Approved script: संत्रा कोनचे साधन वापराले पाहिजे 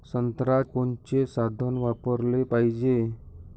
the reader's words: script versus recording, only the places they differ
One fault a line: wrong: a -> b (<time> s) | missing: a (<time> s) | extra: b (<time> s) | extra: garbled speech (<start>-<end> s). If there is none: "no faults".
no faults